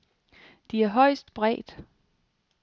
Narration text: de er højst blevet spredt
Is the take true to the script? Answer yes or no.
no